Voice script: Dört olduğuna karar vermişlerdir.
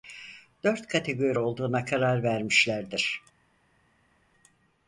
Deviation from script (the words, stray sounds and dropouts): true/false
true